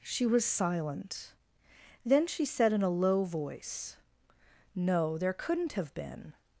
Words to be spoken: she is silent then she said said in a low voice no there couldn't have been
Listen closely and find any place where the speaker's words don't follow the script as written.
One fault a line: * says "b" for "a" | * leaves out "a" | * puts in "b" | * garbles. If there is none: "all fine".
* says "was" for "is"
* leaves out "said"